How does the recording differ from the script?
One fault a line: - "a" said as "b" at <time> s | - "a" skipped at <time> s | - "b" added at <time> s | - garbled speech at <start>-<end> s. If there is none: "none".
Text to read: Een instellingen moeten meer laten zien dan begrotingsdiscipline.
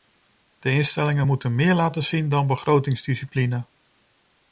- "Een" said as "De" at 0.6 s